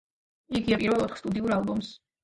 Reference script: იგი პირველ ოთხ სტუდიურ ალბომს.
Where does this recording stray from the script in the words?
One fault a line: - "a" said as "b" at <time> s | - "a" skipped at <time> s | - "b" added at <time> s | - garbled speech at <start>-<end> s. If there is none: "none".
none